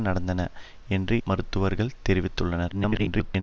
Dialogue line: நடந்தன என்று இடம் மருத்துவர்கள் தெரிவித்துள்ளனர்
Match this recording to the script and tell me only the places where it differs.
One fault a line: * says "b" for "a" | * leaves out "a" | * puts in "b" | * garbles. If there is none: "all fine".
* leaves out "இடம்"
* garbles